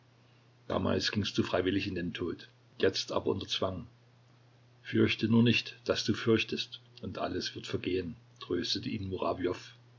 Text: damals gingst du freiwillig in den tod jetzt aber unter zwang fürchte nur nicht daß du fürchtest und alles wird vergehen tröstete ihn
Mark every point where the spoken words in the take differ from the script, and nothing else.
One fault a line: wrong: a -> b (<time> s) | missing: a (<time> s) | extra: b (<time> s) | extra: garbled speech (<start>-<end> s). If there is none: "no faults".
no faults